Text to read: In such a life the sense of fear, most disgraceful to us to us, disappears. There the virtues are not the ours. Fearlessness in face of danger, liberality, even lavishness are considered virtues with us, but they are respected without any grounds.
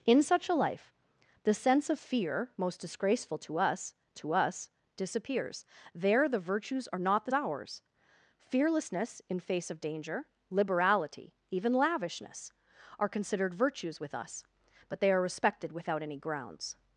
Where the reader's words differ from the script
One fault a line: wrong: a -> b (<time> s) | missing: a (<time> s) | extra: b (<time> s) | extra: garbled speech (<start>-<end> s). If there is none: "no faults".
no faults